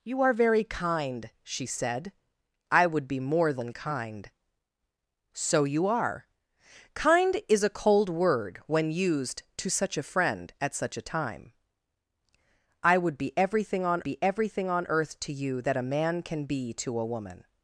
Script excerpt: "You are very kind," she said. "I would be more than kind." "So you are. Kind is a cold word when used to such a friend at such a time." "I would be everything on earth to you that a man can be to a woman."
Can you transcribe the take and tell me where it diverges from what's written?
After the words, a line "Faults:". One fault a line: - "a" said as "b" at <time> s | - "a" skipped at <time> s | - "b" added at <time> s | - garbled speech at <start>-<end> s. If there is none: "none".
"You are very kind," she said. "I would be more than kind." "So you are. Kind is a cold word when used to such a friend at such a time." "I would be everything on be everything on earth to you that a man can be to a woman."
Faults:
- "be everything on" added at 14.0 s